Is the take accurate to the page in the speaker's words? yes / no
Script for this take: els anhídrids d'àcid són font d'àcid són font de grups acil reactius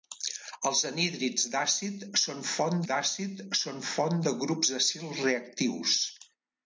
yes